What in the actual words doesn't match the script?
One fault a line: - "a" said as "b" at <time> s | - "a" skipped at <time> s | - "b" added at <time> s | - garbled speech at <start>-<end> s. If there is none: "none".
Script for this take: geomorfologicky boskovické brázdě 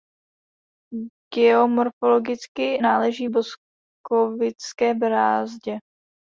- "náleží" added at 2.8 s